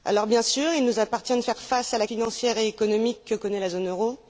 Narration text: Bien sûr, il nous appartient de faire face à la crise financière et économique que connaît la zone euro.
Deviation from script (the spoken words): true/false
true